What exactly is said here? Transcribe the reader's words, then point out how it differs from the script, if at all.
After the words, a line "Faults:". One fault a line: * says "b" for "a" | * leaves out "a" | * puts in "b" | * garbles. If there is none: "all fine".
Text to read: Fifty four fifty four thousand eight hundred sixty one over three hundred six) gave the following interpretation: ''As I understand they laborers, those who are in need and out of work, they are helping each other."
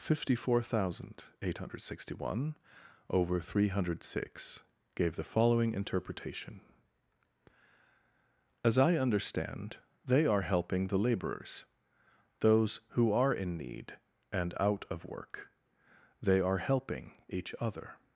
Fifty four thousand eight hundred sixty one over three hundred six) gave the following interpretation: ''As I understand they are helping the laborers, those who are in need and out of work, they are helping each other."
Faults:
* leaves out "fifty four"
* puts in "are helping the"